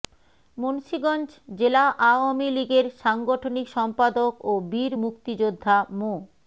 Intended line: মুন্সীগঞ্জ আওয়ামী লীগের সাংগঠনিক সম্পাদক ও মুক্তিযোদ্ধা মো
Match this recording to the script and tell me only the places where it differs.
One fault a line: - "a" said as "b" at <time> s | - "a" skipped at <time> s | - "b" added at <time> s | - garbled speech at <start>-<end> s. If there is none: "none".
- "জেলা" added at 1.6 s
- "বীর" added at 4.7 s